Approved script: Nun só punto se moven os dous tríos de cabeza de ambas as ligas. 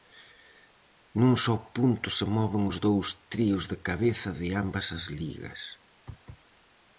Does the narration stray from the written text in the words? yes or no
no